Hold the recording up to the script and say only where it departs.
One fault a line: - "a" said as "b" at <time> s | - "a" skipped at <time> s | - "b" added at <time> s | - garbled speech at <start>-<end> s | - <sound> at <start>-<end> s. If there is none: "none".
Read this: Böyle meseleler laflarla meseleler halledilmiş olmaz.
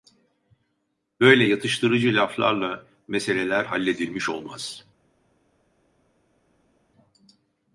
- "meseleler" said as "yatıştırıcı" at 1.4 s